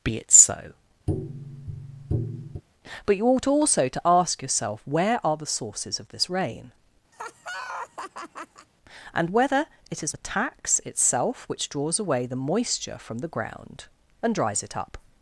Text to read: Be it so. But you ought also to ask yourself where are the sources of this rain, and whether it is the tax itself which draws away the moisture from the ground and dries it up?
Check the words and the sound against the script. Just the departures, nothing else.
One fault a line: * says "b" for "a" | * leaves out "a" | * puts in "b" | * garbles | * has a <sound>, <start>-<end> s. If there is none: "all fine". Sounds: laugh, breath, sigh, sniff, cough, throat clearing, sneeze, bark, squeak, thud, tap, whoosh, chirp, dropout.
* has a tap, 1.1-2.6 s
* has a laugh, 7.1-8.7 s